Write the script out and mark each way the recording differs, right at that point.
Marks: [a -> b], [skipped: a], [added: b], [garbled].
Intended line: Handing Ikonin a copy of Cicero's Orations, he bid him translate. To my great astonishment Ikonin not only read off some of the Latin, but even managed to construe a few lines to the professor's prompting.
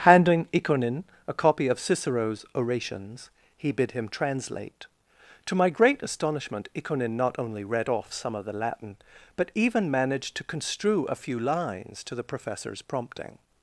Handing Ikonin a copy of Cicero's Orations, he bid him translate. To my great astonishment Ikonin not only read off some of the Latin, but even managed to construe a few lines to the professor's prompting.